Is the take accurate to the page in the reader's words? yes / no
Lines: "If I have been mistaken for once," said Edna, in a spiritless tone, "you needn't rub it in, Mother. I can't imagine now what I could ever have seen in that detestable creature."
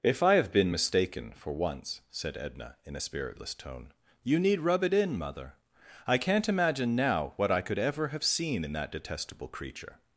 no